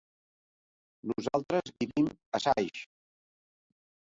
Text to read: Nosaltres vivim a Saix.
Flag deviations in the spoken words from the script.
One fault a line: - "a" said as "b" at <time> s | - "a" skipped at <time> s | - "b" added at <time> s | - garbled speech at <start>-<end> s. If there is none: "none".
none